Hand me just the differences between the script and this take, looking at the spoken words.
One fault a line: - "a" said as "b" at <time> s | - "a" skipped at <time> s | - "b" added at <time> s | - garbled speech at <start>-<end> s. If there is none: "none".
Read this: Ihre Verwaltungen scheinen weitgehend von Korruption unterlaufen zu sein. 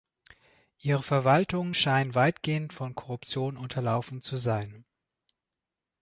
none